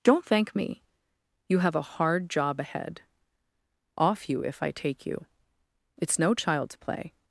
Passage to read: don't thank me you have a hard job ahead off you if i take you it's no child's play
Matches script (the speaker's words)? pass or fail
pass